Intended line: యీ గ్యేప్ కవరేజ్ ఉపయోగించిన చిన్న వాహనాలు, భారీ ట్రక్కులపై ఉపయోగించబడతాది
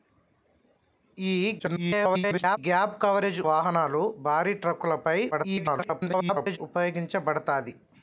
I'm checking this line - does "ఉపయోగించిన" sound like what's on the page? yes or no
no